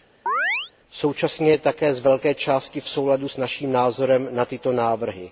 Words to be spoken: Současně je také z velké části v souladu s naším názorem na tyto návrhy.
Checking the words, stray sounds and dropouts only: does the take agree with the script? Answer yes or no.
no